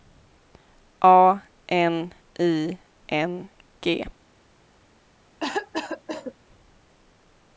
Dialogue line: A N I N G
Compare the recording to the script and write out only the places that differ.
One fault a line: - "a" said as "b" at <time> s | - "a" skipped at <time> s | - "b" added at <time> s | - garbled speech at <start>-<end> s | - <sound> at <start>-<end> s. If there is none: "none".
- cough at 5.4-6.3 s